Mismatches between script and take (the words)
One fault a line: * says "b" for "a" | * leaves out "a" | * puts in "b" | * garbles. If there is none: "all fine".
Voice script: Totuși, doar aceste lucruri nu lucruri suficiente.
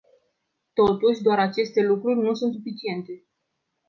* says "sunt" for "lucruri"